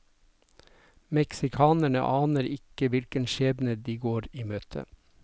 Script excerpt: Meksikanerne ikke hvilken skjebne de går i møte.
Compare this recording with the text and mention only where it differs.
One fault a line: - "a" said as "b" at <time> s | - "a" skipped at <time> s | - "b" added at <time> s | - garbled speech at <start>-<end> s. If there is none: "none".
- "aner" added at 2.2 s